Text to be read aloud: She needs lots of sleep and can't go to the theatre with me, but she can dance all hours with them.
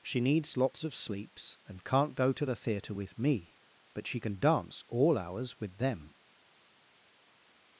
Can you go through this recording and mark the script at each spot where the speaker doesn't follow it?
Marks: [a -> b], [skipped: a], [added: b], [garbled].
She needs lots of [sleep -> sleeps] and can't go to the theatre with me, but she can dance all hours with them.